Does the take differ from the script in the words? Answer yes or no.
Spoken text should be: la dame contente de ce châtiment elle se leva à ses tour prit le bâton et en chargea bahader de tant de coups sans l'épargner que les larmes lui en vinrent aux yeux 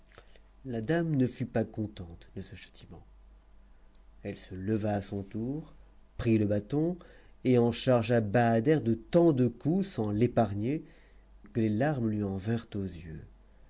yes